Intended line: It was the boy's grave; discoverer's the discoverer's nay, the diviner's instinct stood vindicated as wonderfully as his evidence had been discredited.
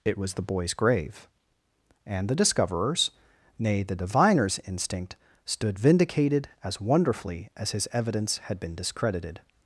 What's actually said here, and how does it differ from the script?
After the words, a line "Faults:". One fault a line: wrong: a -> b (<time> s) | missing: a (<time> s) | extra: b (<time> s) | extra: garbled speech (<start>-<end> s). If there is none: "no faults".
It was the boy's grave; and the discoverer's nay, the diviner's instinct stood vindicated as wonderfully as his evidence had been discredited.
Faults:
wrong: discoverer's -> and (2.1 s)